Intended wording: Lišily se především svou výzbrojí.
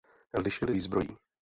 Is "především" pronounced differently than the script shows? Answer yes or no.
yes